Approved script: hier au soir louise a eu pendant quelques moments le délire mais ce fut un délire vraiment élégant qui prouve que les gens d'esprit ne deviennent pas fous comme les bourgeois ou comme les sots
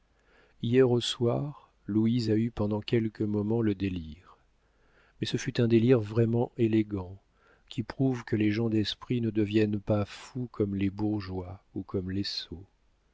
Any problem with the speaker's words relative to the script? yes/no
no